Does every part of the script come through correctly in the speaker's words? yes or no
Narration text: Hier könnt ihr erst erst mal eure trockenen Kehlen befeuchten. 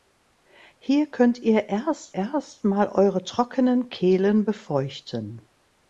yes